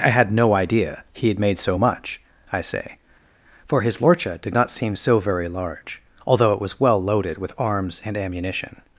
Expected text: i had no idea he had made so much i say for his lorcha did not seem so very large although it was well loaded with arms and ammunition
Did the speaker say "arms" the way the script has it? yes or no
yes